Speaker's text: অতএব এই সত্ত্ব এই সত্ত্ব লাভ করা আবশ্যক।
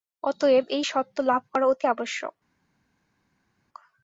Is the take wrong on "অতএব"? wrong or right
right